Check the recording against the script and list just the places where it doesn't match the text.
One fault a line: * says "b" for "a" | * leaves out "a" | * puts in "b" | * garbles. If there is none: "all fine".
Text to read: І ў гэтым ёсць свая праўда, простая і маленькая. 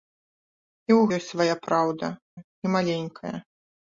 * leaves out "гэтым"
* leaves out "простая"